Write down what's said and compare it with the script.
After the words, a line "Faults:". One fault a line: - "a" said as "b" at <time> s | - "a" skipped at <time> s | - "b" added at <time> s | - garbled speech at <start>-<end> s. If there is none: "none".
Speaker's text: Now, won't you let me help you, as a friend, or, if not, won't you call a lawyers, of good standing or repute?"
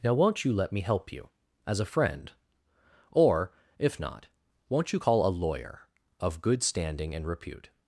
Now, won't you let me help you, as a friend, or, if not, won't you call a lawyer, of good standing and repute?"
Faults:
- "lawyers" said as "lawyer" at 5.3 s
- "or" said as "and" at 7.1 s